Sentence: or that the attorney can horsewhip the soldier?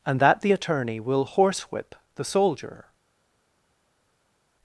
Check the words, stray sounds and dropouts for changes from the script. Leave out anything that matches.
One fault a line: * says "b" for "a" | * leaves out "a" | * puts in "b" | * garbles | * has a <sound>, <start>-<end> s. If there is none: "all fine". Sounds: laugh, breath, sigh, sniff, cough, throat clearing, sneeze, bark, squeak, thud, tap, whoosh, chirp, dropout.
* says "and" for "or"
* says "will" for "can"